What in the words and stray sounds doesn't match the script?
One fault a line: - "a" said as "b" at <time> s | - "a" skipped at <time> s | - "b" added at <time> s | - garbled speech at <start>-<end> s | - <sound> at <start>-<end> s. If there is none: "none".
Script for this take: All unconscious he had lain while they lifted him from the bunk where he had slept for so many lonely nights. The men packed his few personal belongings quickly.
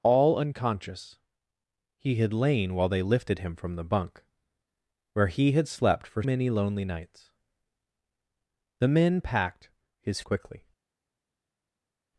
- "so" skipped at 6.2 s
- "few personal belongings" skipped at 10.2 s